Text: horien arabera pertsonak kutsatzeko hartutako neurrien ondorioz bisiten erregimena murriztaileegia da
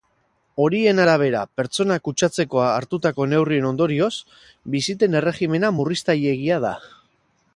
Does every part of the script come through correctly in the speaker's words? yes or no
yes